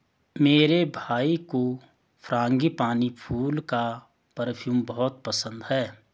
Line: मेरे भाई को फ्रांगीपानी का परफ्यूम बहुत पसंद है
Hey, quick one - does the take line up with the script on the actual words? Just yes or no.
no